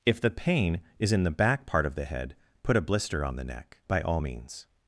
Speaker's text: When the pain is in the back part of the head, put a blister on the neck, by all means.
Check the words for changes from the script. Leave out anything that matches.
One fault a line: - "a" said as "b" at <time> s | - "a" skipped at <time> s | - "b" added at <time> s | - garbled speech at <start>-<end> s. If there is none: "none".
- "When" said as "If" at 0.1 s